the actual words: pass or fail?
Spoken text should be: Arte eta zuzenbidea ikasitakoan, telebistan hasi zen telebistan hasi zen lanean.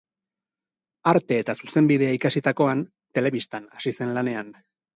fail